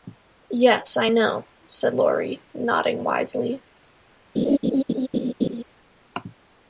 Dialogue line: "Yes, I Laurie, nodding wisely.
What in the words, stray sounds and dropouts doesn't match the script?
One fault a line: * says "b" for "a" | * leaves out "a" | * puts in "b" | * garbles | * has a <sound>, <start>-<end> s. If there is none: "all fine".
* puts in "know said"
* has a laugh, 4.4-5.6 s